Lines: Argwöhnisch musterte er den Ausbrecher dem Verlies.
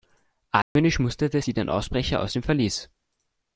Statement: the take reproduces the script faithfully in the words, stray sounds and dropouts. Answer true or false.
false